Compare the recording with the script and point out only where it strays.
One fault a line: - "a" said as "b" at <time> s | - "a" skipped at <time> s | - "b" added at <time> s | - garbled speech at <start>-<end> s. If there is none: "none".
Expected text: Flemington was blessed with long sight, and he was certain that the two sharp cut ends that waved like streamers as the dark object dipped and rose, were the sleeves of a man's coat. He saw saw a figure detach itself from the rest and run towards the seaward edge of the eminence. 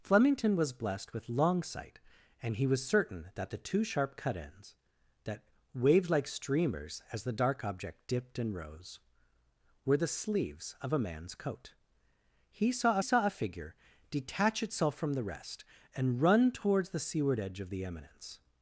none